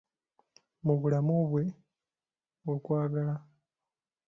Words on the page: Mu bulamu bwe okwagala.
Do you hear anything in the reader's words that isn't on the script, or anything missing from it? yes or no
no